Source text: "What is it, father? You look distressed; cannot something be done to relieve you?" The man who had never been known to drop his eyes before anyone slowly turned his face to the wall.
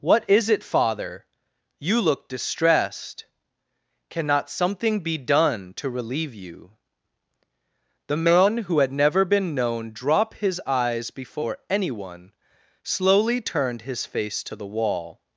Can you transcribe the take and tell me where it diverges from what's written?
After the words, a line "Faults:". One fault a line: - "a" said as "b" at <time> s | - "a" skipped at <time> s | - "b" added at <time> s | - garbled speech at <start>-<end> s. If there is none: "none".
"What is it, father? You look distressed; cannot something be done to relieve you?" The man who had never been known drop his eyes before anyone slowly turned his face to the wall.
Faults:
- "to" skipped at 9.9 s